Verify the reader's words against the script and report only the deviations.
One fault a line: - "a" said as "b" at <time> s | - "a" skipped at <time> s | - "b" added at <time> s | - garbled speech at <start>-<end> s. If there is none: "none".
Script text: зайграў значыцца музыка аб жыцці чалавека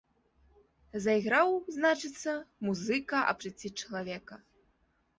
none